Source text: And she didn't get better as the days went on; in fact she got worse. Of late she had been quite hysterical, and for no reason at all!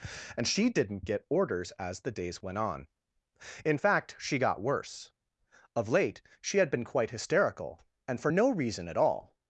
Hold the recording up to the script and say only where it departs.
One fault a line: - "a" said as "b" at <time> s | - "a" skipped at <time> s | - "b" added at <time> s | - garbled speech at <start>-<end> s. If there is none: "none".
- "better" said as "orders" at 1.3 s